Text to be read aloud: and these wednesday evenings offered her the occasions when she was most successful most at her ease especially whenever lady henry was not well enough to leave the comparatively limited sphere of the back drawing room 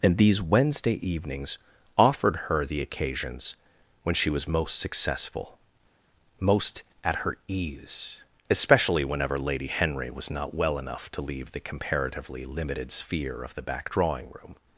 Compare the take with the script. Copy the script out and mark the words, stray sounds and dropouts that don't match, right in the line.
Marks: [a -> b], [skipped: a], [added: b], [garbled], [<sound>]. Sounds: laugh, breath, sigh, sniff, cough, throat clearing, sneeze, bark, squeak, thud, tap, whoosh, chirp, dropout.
and these wednesday evenings offered her the occasions when she was most successful most at her ease especially whenever lady henry was not well enough to leave the comparatively limited sphere of the back drawing room